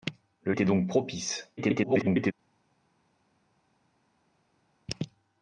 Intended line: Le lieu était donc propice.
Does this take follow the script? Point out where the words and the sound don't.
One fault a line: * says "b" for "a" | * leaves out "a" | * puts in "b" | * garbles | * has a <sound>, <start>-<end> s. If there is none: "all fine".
* leaves out "lieu"
* garbles